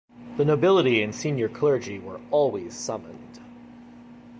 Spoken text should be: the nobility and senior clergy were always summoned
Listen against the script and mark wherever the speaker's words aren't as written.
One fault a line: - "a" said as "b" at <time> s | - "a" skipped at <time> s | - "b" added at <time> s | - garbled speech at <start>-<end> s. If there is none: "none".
none